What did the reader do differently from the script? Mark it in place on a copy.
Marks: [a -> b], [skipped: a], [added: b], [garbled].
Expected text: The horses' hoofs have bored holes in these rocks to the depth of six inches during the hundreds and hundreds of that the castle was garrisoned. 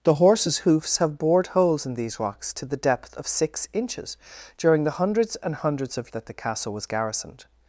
The horses' hoofs have bored holes in these rocks to the depth of six inches during the hundreds and hundreds of that the castle was garrisoned.